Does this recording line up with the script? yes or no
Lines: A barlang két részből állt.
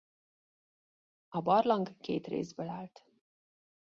yes